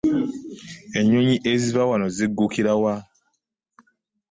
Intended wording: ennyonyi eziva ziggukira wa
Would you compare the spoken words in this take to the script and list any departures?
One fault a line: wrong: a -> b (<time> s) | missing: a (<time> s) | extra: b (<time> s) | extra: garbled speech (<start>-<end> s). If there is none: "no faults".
extra: wano (1.9 s)